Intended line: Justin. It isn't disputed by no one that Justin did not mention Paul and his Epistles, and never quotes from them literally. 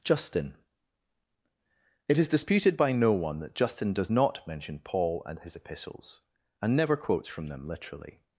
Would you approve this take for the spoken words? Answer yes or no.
no